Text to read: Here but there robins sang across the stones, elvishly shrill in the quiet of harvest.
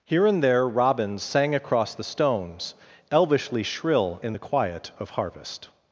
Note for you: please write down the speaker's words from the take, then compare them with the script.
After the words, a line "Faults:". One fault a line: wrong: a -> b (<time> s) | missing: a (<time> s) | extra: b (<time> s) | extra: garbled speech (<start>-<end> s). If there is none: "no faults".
Here and there robins sang across the stones, elvishly shrill in the quiet of harvest.
Faults:
wrong: but -> and (0.2 s)